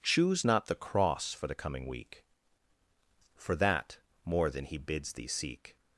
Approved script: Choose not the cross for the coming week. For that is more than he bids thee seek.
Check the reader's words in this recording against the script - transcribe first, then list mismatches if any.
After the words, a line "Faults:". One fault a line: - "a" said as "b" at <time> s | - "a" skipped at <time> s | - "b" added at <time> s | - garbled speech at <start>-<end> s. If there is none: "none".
Choose not the cross for the coming week. For that more than he bids thee seek.
Faults:
- "is" skipped at 4.0 s